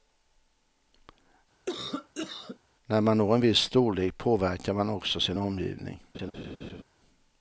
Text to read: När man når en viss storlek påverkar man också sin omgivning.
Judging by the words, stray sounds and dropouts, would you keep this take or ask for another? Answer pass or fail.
fail